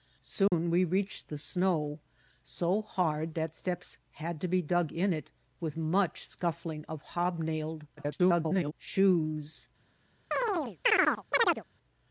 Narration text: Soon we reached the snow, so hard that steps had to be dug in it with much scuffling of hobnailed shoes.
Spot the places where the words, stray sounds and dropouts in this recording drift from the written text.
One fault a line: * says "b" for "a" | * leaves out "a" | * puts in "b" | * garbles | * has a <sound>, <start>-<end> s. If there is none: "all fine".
* has a dropout, 0.5-0.5 s
* garbles
* has a chirp, 10.3-11.6 s